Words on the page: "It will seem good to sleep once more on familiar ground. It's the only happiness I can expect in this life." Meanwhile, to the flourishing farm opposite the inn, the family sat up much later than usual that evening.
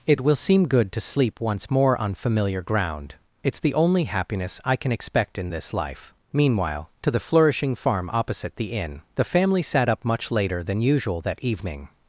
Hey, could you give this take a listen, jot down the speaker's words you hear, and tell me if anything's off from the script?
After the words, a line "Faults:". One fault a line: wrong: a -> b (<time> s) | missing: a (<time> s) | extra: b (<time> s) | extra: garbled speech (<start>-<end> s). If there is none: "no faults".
"It will seem good to sleep once more on familiar ground. It's the only happiness I can expect in this life." Meanwhile, to the flourishing farm opposite the inn, the family sat up much later than usual that evening.
Faults:
no faults